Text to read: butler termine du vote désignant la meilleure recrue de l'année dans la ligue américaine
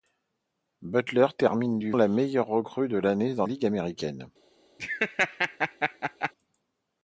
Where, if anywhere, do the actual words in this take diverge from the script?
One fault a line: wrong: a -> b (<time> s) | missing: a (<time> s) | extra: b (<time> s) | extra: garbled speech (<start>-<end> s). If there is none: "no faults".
missing: vote désignant (1.9 s)
missing: la (3.5 s)